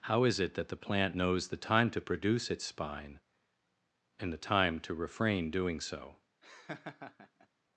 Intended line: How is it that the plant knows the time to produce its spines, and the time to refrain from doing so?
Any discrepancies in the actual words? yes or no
yes